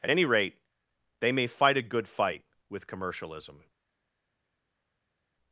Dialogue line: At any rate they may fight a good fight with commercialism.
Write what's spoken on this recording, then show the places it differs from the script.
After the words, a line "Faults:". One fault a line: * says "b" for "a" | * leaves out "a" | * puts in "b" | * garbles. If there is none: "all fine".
At any rate they may fight a good fight with commercialism.
Faults:
all fine